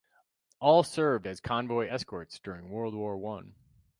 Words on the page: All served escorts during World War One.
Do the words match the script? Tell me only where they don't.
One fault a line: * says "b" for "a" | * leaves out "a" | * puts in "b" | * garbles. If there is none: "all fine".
* puts in "as convoy"